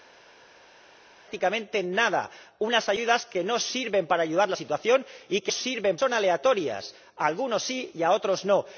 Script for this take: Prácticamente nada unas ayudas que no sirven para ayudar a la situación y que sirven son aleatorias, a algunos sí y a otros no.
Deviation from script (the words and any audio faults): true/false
false